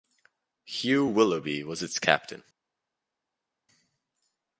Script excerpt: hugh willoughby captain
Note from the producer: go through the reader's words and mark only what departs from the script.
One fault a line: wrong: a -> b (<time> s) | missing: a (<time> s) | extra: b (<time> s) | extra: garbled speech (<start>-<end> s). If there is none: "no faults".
extra: was its (1.6 s)